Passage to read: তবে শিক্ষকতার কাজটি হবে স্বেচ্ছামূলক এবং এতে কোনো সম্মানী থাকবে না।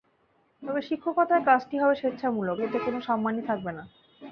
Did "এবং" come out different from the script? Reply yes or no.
yes